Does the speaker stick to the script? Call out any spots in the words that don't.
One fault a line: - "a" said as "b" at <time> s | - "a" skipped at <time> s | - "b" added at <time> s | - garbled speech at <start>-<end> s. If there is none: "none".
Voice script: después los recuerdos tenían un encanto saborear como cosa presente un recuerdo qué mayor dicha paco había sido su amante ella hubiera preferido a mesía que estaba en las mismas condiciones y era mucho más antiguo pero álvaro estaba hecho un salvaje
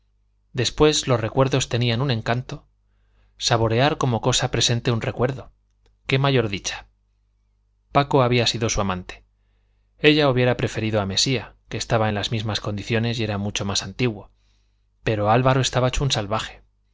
none